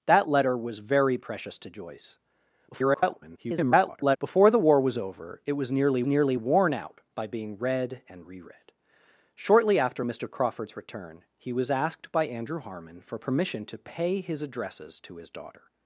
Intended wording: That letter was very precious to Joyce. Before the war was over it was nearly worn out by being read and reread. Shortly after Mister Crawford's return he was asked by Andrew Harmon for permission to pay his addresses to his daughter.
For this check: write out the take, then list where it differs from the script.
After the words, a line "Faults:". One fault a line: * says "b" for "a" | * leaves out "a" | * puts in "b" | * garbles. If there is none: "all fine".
That letter was very precious to Joyce. [garbled] Before the war was over it was nearly nearly worn out by being read and reread. Shortly after Mister Crawford's return he was asked by Andrew Harmon for permission to pay his addresses to his daughter.
Faults:
* garbles
* puts in "nearly"